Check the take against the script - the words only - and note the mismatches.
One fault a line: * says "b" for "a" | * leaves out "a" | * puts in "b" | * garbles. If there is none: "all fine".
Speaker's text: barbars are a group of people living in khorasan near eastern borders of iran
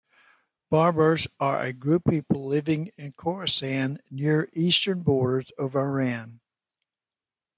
* leaves out "of"